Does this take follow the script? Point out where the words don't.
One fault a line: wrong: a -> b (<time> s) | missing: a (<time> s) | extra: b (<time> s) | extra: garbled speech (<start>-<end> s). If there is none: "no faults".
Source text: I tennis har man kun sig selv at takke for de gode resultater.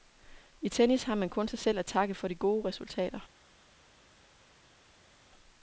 no faults